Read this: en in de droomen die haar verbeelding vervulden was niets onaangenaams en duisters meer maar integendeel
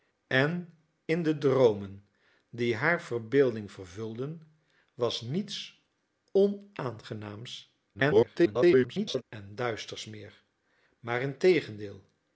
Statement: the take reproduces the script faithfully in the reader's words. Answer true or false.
false